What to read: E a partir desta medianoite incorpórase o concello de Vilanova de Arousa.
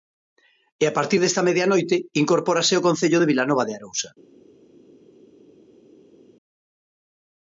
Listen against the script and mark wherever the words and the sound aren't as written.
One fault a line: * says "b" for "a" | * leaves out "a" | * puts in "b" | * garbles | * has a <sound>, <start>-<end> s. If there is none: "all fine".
all fine